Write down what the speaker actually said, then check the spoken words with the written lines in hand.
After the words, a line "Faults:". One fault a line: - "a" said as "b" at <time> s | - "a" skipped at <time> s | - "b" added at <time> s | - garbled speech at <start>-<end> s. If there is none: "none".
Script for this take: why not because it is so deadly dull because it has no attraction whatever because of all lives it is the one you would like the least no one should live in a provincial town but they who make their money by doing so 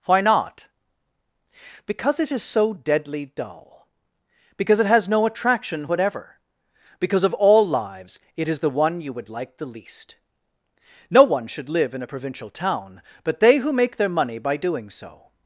why not because it is so deadly dull because it has no attraction whatever because of all lives it is the one you would like the least no one should live in a provincial town but they who make their money by doing so
Faults:
none